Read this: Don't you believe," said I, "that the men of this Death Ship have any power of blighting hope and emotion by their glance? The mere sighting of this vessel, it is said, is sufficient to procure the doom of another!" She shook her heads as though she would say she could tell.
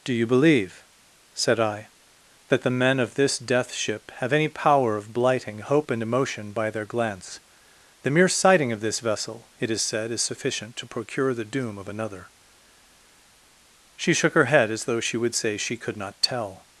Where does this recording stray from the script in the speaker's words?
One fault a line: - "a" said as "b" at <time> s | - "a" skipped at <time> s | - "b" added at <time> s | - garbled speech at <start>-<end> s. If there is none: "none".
- "Don't" said as "Do" at 0.0 s
- "heads" said as "head" at 14.4 s
- "not" added at 16.0 s